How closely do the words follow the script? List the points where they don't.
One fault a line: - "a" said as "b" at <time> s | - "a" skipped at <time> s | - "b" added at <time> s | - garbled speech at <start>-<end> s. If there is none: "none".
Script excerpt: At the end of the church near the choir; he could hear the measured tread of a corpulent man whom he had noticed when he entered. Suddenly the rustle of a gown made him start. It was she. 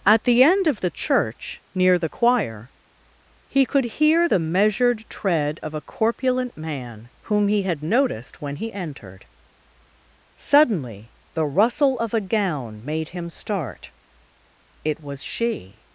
none